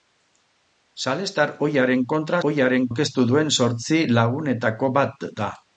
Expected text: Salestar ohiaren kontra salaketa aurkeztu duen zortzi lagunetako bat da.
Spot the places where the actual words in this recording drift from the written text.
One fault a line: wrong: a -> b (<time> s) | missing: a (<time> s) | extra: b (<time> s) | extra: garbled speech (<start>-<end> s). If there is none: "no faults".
wrong: salaketa -> ohiaren (2.5 s)